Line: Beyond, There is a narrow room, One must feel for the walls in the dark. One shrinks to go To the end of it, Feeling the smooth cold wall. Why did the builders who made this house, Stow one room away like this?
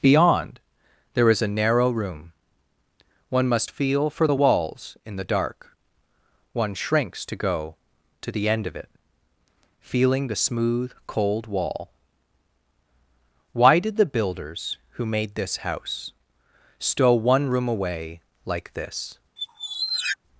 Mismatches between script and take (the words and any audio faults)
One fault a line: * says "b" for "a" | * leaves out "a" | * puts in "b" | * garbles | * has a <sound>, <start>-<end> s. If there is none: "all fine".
* has a squeak, 19.4-20.2 s